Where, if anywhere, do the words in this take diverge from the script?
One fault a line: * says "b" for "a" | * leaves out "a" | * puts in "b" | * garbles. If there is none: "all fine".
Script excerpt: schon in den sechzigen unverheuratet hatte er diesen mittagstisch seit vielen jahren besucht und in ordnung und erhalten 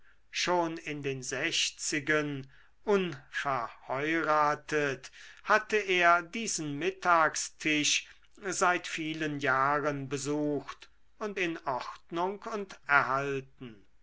all fine